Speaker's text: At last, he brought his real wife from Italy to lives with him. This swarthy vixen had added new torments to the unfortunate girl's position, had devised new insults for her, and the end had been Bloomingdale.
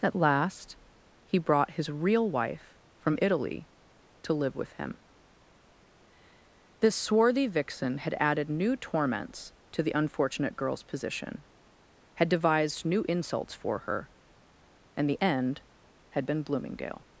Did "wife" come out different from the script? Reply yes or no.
no